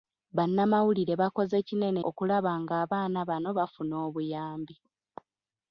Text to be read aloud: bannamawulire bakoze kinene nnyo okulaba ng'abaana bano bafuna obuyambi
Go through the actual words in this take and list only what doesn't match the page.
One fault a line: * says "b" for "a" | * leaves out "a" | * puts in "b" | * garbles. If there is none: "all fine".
* leaves out "nnyo"